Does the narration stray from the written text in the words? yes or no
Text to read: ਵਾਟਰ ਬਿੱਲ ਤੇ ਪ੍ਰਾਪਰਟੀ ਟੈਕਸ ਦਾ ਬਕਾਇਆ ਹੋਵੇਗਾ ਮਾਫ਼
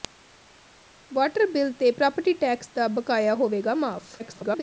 yes